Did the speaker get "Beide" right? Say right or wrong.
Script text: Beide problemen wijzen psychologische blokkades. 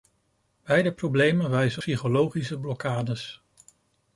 right